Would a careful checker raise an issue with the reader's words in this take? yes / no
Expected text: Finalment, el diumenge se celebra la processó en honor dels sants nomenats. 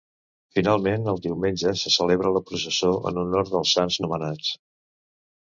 no